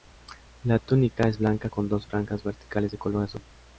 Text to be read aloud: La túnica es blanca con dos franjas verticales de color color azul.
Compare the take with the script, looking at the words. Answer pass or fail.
fail